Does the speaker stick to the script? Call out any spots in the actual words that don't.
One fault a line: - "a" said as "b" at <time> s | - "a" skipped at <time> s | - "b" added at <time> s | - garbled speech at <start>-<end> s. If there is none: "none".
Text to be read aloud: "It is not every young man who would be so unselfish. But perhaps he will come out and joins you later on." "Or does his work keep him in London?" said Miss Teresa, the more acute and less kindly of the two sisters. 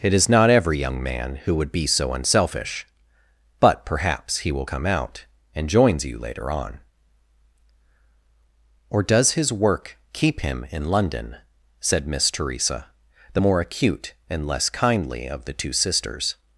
none